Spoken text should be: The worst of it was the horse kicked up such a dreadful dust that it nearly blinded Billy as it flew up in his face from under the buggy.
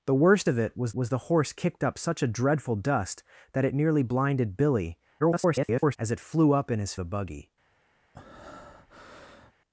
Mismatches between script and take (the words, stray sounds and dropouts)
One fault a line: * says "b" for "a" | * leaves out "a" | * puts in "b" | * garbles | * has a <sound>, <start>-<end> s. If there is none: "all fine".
* puts in "was"
* garbles
* leaves out "face from under"
* has a breath, 8.1-9.5 s